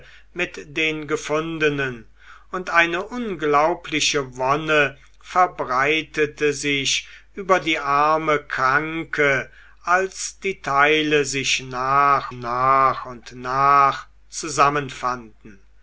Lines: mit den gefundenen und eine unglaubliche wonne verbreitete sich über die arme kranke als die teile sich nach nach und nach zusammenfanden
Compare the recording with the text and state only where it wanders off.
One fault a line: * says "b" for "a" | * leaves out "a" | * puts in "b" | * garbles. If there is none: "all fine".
all fine